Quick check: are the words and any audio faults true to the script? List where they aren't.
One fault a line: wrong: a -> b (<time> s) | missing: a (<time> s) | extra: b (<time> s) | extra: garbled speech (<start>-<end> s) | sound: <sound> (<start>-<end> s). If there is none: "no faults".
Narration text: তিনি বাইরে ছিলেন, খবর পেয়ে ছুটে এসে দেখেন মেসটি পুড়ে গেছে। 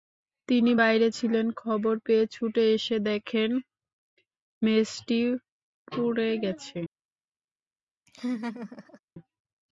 sound: laugh (8.1-9.0 s)